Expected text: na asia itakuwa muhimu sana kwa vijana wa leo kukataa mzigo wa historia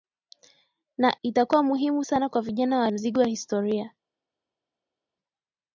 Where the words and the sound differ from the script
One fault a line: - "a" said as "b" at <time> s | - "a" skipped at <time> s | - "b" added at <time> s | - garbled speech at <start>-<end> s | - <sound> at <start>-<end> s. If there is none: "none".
- "asia" skipped at 1.2 s
- "leo kukataa" skipped at 2.9 s